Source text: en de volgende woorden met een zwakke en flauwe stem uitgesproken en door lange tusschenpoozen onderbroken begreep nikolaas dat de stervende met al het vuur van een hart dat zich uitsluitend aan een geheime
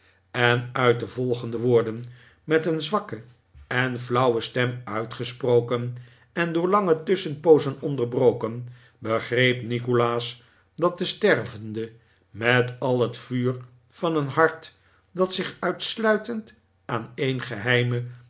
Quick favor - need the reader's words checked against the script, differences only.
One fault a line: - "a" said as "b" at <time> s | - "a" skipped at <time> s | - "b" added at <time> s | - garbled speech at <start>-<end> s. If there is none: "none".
- "uit" added at 0.7 s